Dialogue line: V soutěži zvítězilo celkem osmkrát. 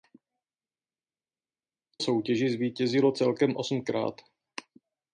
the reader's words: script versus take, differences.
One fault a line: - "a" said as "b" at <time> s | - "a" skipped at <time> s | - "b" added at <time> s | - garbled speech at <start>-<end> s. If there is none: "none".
none